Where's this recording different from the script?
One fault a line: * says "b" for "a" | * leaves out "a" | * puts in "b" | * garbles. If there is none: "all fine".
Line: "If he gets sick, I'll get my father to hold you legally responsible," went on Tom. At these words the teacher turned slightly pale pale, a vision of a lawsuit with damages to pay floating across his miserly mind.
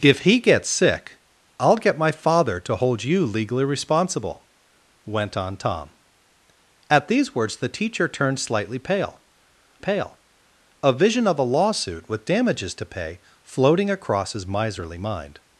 all fine